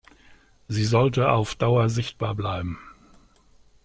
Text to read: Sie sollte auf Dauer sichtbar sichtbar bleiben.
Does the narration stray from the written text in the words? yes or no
yes